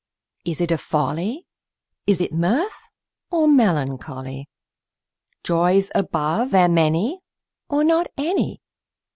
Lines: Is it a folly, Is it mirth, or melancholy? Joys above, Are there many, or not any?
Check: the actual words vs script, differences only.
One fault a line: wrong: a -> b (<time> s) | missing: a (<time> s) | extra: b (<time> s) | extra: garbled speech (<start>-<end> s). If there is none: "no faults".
missing: Are (6.6 s)